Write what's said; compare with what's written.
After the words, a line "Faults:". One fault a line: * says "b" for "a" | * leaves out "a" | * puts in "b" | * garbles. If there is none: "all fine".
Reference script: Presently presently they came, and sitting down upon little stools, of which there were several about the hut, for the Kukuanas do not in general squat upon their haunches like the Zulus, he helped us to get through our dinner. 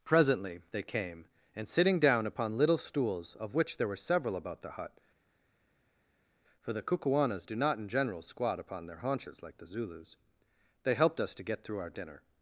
Presently they came, and sitting down upon little stools, of which there were several about the hut, for the Kukuanas do not in general squat upon their haunches like the Zulus, they helped us to get through our dinner.
Faults:
* leaves out "presently"
* says "they" for "he"